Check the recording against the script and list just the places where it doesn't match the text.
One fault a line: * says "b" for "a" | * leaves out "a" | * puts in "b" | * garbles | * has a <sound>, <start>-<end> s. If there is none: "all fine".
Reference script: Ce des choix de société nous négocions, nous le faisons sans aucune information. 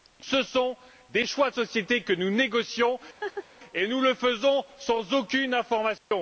* puts in "sont"
* puts in "que"
* has a laugh, 3.2-3.5 s
* puts in "et"
* has a dropout, 6.0-6.1 s